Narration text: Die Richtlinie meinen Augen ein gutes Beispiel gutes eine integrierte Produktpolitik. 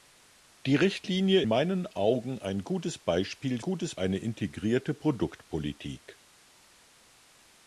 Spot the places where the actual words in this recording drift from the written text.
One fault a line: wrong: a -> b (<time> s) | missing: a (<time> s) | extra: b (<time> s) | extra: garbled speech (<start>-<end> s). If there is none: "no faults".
no faults